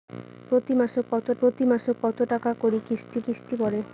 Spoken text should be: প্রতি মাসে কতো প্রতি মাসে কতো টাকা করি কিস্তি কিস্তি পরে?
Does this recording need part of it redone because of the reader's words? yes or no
no